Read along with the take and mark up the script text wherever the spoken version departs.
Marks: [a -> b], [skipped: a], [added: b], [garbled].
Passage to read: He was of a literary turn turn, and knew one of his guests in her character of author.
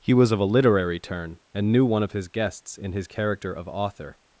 He was of a literary turn [skipped: turn,] and knew one of his guests in [her -> his] character of author.